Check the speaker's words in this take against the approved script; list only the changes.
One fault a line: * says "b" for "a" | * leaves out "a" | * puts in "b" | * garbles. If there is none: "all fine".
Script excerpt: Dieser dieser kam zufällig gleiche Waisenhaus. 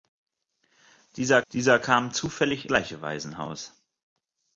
all fine